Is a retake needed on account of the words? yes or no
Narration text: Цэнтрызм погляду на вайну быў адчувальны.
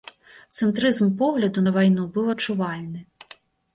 no